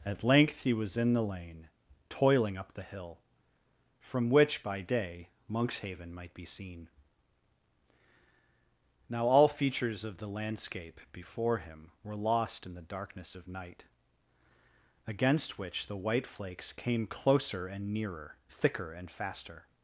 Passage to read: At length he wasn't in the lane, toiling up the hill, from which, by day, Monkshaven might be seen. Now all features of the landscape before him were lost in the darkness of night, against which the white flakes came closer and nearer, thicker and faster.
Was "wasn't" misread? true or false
true